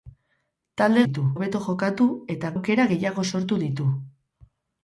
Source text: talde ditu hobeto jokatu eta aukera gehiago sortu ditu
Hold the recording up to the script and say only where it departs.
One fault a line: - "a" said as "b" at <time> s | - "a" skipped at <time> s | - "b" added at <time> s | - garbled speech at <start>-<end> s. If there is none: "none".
none